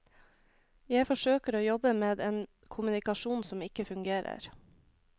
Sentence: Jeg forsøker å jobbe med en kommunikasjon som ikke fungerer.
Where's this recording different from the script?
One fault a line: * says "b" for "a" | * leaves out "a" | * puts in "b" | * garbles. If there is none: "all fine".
all fine